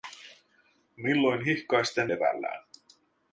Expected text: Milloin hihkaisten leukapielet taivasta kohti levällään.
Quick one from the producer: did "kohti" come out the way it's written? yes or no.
no